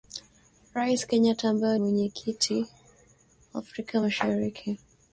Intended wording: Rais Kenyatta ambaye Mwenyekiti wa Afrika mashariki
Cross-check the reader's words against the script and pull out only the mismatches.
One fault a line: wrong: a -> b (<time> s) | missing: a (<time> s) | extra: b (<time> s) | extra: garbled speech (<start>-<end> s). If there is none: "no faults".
no faults